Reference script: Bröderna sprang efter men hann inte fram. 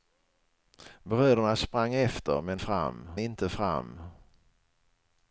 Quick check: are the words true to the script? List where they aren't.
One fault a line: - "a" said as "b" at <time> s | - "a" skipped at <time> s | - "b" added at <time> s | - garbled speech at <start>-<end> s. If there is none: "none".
- "hann" said as "fram" at 2.6 s